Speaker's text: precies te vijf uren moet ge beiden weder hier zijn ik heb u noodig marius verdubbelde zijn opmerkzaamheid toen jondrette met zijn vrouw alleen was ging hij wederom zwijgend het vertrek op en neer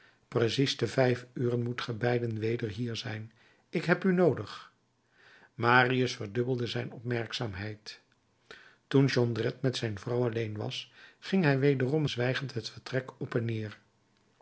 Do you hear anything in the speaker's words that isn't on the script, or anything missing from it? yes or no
no